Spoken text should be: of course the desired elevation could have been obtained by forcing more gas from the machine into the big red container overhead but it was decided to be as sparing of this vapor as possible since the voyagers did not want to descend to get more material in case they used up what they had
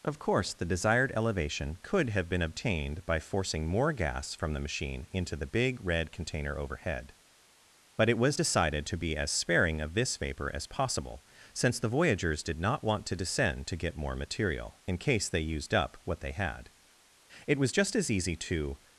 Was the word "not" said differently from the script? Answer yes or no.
no